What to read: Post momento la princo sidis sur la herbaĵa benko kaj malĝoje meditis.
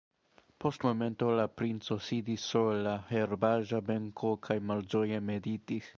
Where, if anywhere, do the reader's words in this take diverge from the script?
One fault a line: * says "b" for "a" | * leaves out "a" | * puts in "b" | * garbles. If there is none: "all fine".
all fine